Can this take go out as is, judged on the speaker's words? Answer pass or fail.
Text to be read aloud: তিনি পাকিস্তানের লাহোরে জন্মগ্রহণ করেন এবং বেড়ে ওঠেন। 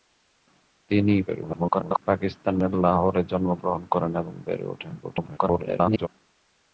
fail